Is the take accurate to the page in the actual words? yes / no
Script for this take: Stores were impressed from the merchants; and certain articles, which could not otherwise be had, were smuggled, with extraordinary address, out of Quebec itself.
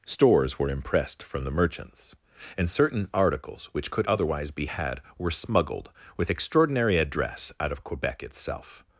no